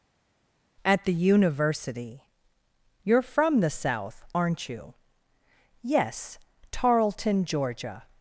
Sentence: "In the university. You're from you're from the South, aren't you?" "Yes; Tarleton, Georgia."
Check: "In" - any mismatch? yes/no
yes